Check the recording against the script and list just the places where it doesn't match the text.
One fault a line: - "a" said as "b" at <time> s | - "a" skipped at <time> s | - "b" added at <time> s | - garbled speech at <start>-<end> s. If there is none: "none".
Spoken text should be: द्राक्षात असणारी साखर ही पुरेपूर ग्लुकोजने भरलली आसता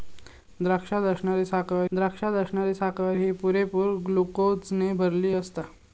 - "द्राक्षात असणारी साखर" added at 1.9 s